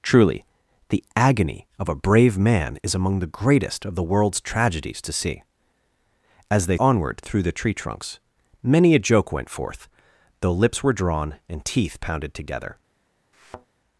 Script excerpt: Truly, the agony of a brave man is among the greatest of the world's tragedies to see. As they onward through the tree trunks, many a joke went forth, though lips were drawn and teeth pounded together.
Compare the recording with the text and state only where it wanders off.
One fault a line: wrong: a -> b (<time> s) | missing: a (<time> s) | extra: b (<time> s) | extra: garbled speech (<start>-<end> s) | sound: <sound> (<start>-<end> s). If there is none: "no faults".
sound: thud (13.3-13.7 s)